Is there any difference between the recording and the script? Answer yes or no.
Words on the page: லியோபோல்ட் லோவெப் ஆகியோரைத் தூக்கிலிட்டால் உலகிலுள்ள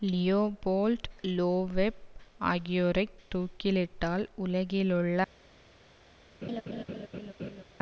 no